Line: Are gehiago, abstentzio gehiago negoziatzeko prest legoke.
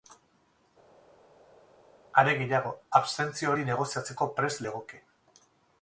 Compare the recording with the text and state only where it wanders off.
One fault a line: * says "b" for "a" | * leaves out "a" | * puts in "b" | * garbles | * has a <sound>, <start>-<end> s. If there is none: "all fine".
* says "hori" for "gehiago"